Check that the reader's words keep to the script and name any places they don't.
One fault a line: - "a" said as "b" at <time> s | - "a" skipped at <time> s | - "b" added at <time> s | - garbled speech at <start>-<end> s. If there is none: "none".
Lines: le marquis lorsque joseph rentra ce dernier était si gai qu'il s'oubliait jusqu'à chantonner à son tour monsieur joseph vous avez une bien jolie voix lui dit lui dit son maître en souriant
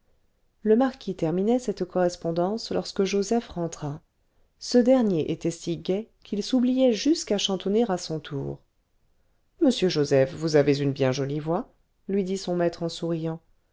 - "terminait cette correspondance" added at 1.1 s
- "lui dit" skipped at 12.4 s